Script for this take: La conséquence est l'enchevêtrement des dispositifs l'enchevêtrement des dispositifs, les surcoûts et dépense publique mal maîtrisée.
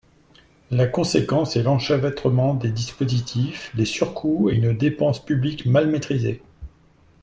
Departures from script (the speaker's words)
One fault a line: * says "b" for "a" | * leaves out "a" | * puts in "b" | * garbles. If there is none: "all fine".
* leaves out "l'enchevêtrement des dispositifs"
* puts in "une"